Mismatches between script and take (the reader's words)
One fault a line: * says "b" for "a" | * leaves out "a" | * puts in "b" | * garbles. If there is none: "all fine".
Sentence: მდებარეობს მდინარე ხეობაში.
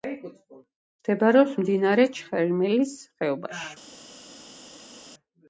* puts in "ჩხერიმელის"